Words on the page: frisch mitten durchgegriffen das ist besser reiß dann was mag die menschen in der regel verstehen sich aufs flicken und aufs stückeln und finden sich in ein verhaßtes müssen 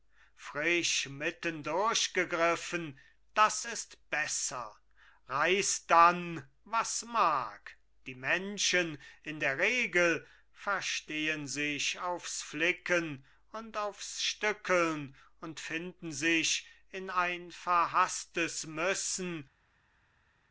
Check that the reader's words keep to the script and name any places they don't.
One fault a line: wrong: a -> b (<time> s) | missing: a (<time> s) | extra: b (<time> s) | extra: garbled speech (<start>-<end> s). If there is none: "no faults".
no faults